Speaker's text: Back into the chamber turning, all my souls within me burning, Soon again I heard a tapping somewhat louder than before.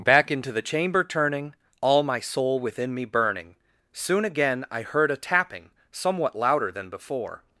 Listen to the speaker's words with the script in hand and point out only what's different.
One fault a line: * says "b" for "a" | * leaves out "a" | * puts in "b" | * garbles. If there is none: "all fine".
* says "soul" for "souls"